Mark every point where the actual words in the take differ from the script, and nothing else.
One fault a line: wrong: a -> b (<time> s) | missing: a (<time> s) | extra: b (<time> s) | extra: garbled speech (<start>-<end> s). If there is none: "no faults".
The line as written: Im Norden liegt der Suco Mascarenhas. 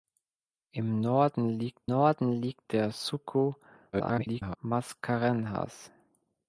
extra: Norden liegt (1.8 s)
extra: garbled speech (3.9-4.6 s)